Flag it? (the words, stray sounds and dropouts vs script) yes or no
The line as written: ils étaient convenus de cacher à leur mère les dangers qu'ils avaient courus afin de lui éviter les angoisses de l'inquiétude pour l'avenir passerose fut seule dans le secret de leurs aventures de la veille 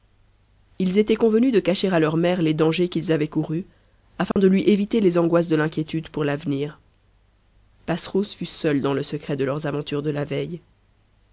yes